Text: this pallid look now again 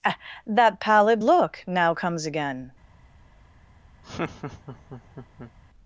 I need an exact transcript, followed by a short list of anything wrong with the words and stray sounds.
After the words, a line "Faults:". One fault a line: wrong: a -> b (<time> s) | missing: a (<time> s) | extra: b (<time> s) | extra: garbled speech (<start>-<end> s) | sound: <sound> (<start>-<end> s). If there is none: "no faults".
that pallid look now comes again
Faults:
wrong: this -> that (0.5 s)
extra: comes (2.0 s)
sound: laugh (4.0-5.5 s)